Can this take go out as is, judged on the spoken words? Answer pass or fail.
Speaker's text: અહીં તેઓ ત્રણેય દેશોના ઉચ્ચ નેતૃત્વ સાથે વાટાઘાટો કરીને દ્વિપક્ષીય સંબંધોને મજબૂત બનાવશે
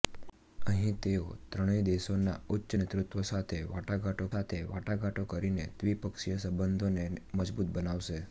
fail